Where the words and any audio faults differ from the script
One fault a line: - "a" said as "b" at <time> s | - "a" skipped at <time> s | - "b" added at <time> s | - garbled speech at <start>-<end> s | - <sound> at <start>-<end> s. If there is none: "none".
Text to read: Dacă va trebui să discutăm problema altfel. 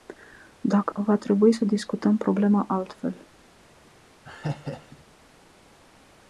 - laugh at 4.2-5.0 s